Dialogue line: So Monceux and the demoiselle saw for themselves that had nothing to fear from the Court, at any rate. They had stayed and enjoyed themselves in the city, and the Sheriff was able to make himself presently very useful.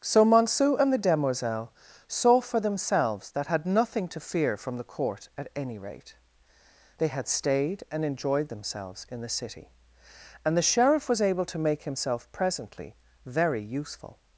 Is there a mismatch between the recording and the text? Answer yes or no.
no